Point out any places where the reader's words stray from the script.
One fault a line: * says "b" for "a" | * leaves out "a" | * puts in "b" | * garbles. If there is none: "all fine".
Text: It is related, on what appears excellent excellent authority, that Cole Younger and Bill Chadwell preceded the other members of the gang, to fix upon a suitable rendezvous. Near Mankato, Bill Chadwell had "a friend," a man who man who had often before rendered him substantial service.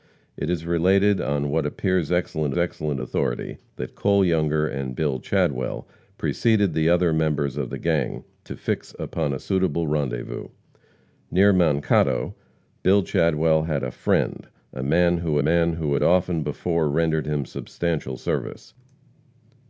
all fine